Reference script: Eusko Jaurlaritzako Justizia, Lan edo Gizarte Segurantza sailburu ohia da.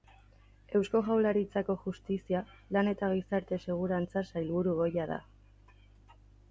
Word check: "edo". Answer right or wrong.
wrong